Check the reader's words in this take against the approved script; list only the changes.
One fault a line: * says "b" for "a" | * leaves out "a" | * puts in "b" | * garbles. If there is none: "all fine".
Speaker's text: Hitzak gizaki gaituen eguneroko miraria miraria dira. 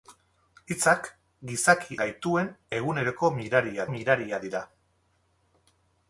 all fine